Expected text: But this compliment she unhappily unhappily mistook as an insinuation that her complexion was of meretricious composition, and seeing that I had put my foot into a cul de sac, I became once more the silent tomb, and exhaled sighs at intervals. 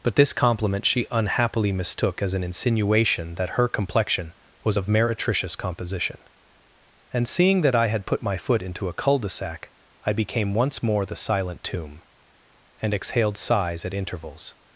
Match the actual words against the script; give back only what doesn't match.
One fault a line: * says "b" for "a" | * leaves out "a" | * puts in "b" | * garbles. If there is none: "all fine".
* leaves out "unhappily"